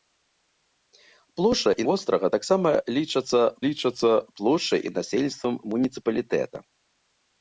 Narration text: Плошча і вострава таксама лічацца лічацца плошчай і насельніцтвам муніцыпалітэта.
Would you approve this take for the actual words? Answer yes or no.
yes